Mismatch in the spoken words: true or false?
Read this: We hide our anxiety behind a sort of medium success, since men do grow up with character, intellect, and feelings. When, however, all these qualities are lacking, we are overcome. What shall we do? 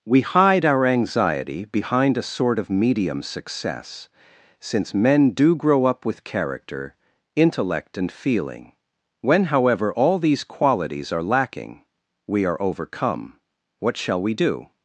true